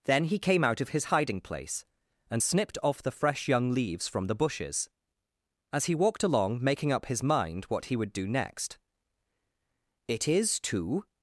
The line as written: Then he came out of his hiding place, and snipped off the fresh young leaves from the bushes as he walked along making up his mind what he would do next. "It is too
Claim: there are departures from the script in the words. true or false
false